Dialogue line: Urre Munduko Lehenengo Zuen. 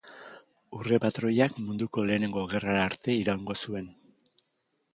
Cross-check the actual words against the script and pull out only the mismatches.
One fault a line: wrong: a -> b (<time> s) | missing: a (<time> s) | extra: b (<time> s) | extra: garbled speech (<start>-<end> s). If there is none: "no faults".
extra: patroiak (1.0 s)
extra: Gerrara arte iraungo (2.5 s)